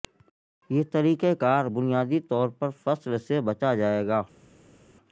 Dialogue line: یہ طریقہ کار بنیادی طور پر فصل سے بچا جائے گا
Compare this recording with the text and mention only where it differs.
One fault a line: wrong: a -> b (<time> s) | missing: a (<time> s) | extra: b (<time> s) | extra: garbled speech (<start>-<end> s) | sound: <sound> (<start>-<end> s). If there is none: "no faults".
no faults